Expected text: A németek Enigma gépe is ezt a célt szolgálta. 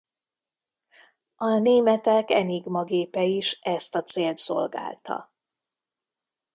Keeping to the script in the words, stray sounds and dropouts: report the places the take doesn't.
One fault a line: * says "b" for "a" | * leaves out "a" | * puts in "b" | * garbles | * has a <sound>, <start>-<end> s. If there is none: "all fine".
all fine